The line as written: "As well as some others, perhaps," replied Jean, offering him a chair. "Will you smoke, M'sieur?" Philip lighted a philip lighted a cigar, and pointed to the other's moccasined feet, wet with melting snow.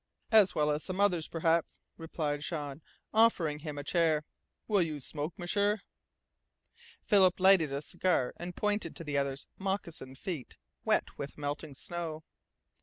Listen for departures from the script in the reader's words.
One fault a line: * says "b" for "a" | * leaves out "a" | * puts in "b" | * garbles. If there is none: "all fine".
* leaves out "philip lighted a"